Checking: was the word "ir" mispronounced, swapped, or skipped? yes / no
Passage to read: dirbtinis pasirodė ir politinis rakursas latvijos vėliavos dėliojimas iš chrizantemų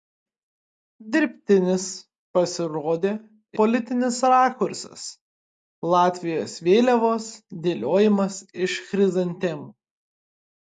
yes